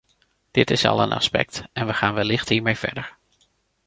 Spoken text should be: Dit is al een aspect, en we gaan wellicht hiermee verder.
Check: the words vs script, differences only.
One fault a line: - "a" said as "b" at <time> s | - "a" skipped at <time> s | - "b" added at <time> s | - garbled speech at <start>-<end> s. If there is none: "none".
none